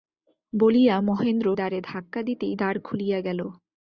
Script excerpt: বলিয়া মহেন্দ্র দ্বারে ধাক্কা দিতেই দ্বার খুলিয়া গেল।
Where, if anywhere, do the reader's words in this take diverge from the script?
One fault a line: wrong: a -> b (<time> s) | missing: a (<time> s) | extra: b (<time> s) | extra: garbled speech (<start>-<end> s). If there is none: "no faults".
no faults